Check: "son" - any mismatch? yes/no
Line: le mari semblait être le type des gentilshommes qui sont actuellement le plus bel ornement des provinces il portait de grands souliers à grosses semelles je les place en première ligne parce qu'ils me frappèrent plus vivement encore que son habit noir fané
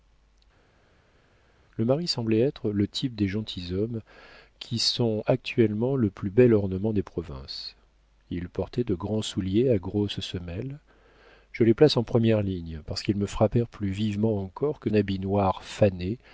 yes